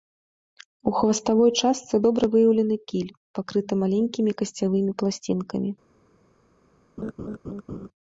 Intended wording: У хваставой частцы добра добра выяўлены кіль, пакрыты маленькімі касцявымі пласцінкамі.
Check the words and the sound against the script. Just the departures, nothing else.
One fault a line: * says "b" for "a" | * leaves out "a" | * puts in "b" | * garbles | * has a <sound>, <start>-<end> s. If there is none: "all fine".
* leaves out "добра"
* has a laugh, 7.0-7.9 s